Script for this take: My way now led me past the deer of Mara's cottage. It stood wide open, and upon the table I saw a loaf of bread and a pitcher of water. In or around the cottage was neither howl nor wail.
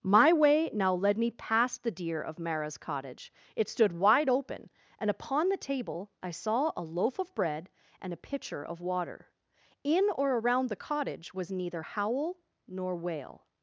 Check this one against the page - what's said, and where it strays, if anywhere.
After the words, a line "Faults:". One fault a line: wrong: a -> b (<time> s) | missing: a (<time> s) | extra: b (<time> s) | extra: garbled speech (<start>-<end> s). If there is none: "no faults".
My way now led me past the deer of Mara's cottage. It stood wide open, and upon the table I saw a loaf of bread and a pitcher of water. In or around the cottage was neither howl nor wail.
Faults:
no faults